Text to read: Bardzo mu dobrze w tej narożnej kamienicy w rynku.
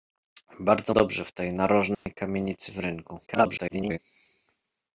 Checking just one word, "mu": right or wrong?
wrong